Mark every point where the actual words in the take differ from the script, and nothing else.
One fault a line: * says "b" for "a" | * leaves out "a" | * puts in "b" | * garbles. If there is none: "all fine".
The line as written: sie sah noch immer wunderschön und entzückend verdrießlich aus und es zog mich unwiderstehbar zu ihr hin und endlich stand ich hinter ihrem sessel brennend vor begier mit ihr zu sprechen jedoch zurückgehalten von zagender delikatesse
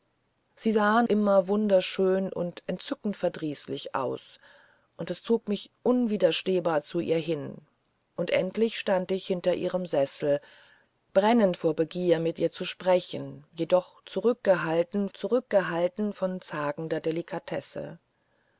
* leaves out "noch"
* puts in "zurückgehalten"